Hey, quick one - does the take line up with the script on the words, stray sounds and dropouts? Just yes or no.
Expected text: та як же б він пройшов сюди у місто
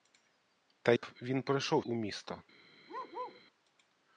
no